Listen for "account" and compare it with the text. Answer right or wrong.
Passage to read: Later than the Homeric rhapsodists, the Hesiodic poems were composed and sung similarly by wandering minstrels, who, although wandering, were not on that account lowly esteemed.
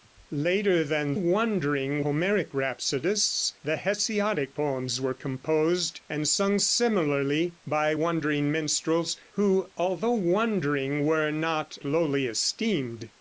wrong